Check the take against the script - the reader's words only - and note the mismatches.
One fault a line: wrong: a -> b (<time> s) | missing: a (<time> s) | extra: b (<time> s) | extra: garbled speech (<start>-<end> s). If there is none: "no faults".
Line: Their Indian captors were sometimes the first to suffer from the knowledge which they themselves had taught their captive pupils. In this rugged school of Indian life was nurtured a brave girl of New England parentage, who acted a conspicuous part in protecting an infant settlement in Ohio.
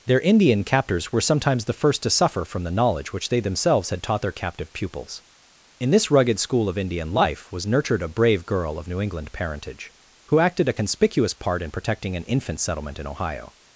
no faults